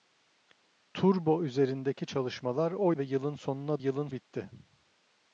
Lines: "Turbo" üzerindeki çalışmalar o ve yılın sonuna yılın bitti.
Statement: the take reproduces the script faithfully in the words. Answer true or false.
true